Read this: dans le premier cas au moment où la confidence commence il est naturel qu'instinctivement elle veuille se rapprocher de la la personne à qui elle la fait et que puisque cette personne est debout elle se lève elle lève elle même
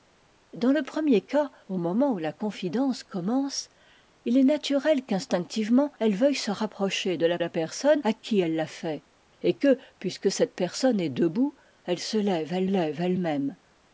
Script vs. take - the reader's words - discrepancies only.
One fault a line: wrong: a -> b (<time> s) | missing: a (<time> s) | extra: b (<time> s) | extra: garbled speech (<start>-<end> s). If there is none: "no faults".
no faults